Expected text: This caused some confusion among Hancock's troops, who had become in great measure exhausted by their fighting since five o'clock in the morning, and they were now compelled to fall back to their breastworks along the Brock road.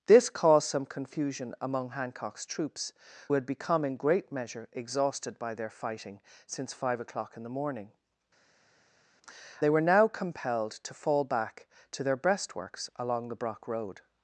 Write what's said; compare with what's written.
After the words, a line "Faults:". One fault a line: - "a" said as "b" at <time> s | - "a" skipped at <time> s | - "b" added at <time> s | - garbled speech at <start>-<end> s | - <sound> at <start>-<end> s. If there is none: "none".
This caused some confusion among Hancock's troops, had become in great measure exhausted by their fighting since five o'clock in the morning, they were now compelled to fall back to their breastworks along the Brock road.
Faults:
- "who" skipped at 2.9 s
- "and" skipped at 7.9 s